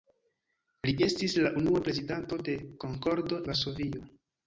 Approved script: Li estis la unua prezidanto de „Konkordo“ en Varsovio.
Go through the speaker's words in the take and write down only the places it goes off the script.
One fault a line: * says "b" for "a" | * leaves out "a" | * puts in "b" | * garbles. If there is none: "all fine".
* leaves out "en"